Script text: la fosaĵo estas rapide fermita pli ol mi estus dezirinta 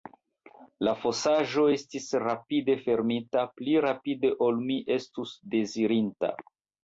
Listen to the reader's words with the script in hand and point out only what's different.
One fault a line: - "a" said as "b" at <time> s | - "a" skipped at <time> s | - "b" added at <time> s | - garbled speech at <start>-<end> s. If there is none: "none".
- "estas" said as "estis" at 1.7 s
- "rapide" added at 3.9 s